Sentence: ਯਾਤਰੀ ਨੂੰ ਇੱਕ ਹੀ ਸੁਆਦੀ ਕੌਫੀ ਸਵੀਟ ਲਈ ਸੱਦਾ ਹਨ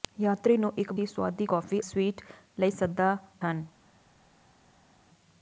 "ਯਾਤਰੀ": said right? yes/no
yes